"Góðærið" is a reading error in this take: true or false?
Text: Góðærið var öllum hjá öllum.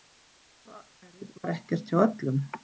false